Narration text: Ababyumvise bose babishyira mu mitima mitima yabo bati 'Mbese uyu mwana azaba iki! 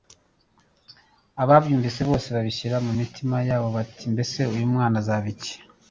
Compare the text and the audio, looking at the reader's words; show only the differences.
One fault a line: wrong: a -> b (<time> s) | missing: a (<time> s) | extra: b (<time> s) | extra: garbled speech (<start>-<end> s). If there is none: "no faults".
missing: mitima (3.4 s)